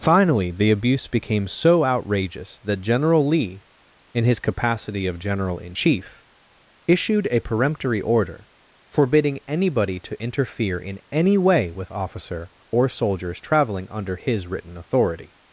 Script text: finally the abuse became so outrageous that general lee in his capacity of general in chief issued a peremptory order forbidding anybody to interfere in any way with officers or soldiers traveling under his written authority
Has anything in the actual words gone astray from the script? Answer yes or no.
yes